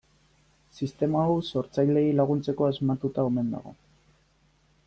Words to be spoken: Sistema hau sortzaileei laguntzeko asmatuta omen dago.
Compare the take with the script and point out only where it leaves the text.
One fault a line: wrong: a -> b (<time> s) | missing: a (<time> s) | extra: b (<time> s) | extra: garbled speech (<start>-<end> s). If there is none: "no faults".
no faults